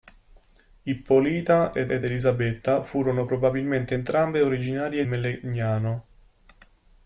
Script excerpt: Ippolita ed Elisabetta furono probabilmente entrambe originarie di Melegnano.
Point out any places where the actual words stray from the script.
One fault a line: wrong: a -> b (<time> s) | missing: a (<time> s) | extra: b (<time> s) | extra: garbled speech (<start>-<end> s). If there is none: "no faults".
extra: ed (1.9 s)
missing: di (5.1 s)